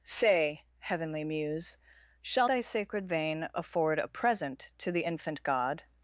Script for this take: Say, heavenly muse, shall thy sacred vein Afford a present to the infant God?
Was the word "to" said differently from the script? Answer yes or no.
no